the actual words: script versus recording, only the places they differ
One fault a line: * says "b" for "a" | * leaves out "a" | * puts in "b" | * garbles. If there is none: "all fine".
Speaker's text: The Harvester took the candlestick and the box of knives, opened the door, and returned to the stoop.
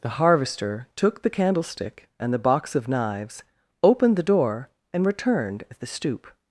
* says "at" for "to"